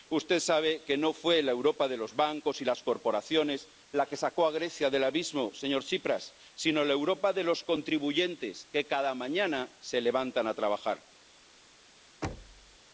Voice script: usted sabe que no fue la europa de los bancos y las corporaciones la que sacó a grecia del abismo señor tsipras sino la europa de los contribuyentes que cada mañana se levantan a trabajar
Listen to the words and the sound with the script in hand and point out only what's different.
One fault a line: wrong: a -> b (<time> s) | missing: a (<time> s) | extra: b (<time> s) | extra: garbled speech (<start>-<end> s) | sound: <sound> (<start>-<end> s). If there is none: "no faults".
sound: thud (12.2-12.8 s)